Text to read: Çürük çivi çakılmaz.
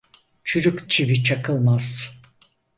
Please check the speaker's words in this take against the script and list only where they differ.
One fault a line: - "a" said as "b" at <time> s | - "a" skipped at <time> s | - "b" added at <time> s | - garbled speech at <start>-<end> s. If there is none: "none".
none